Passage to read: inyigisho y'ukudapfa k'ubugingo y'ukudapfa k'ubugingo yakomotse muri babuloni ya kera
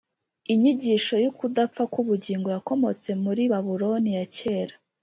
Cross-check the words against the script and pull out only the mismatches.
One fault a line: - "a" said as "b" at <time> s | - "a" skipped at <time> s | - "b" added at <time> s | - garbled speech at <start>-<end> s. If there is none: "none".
- "y'ukudapfa k'ubugingo" skipped at 2.5 s